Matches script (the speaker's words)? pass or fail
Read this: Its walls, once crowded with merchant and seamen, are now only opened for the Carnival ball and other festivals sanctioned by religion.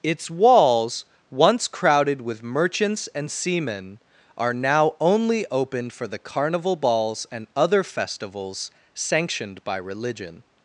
fail